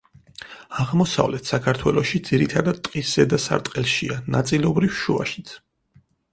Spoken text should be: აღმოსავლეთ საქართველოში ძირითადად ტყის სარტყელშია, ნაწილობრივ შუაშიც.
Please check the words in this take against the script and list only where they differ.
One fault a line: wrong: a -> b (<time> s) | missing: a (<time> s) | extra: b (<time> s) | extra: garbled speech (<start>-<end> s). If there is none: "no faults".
extra: ზედა (3.2 s)